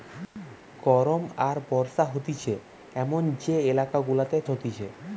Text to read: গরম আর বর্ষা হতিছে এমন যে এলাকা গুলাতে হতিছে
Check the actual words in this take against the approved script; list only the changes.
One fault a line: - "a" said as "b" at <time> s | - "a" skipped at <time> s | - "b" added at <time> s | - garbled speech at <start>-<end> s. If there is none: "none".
none